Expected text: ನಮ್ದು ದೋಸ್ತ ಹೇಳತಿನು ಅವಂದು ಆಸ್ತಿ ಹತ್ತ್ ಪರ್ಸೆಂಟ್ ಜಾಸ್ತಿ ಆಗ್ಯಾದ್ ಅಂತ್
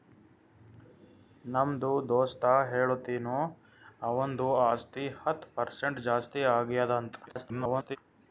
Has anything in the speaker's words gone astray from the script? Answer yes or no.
yes